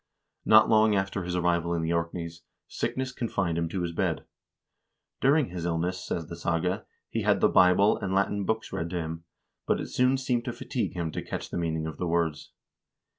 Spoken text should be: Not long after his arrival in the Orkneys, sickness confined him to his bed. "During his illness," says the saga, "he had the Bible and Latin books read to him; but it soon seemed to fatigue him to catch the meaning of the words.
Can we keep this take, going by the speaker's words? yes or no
yes